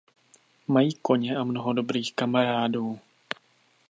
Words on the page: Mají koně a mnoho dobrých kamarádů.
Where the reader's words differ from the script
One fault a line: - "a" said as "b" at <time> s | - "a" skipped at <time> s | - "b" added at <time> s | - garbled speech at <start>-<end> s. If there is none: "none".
none